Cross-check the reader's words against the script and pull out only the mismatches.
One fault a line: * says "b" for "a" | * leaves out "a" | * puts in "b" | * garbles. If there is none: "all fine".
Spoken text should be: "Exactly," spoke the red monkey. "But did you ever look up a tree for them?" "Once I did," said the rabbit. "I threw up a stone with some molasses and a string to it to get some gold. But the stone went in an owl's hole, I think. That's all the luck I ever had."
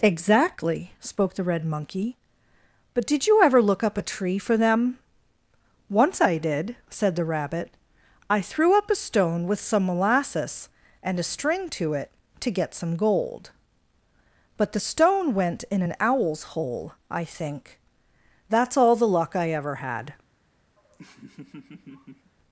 all fine